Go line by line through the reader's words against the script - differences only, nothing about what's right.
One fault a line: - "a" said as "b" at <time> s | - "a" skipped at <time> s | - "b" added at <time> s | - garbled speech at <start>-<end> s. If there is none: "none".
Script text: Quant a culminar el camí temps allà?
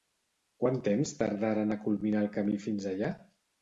- "temps tardaren" added at 0.9 s
- "temps" said as "fins" at 2.7 s